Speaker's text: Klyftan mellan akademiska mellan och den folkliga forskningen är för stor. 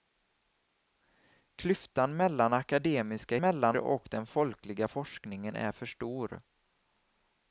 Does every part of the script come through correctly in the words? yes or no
yes